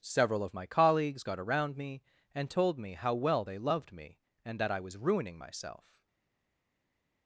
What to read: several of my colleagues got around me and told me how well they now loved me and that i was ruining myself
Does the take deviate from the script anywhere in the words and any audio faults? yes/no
yes